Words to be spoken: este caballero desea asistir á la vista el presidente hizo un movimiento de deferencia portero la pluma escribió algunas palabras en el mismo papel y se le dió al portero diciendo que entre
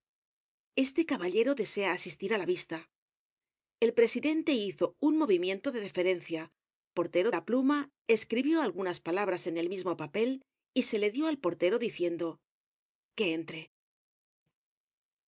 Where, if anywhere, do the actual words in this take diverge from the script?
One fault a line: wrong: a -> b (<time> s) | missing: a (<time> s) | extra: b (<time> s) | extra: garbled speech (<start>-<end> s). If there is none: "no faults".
no faults